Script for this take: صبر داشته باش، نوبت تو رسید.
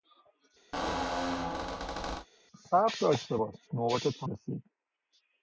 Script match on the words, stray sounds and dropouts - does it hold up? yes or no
no